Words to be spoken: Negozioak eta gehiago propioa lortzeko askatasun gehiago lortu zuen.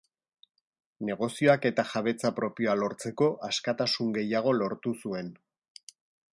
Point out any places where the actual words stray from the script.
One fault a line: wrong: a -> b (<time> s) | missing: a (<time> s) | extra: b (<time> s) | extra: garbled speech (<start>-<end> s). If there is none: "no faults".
wrong: gehiago -> jabetza (1.9 s)